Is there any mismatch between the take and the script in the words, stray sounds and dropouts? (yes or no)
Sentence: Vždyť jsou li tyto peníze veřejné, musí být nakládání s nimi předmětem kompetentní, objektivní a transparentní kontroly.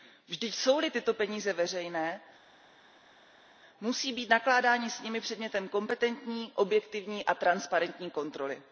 no